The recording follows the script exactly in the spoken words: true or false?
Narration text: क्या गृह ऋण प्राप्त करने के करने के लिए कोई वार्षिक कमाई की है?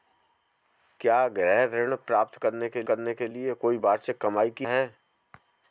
true